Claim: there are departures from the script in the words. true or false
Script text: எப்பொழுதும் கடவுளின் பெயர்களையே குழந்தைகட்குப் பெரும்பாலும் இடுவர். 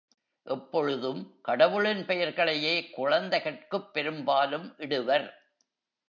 false